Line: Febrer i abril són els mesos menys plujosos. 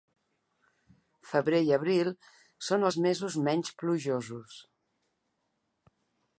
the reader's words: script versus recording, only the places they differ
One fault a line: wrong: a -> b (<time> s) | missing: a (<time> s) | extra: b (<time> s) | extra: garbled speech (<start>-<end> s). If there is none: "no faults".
no faults